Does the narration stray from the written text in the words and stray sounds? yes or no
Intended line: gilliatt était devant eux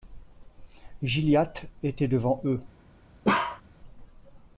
yes